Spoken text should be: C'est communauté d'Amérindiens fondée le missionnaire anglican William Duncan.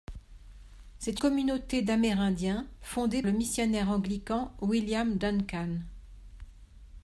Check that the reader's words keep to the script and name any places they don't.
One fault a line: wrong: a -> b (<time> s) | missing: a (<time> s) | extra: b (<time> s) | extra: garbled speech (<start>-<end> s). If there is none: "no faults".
no faults